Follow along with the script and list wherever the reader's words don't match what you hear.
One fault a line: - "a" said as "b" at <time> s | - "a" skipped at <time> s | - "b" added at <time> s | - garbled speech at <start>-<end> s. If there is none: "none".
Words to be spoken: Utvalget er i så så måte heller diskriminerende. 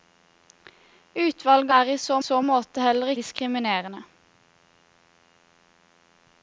none